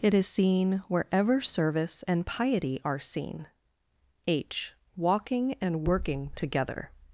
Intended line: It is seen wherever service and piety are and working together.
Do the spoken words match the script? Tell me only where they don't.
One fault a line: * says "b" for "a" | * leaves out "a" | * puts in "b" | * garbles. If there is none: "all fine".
* puts in "seen H walking"